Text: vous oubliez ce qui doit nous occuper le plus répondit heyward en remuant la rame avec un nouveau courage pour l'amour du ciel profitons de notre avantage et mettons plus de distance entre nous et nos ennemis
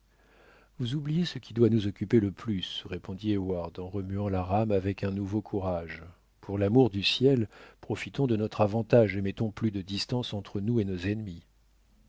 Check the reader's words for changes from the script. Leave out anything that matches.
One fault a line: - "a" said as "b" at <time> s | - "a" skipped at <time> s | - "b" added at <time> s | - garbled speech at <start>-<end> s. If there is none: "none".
none